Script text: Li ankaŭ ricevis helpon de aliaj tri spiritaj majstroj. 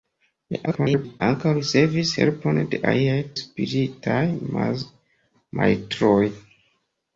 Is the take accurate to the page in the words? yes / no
no